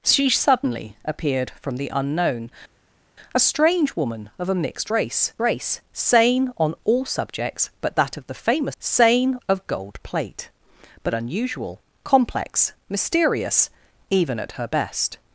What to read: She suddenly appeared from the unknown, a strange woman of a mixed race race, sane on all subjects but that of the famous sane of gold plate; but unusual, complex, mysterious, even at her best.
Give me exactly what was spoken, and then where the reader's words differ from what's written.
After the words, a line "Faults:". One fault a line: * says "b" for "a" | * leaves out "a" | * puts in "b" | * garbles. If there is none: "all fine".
She suddenly appeared from the unknown, a strange woman of a mixed race race, sane on all subjects but that of the famous sane of gold plate; but unusual, complex, mysterious, even at her best.
Faults:
all fine